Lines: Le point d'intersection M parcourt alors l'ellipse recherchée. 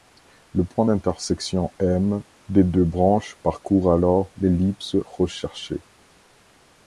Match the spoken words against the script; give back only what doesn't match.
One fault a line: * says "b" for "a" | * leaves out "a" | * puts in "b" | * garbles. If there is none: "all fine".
* puts in "des deux branches"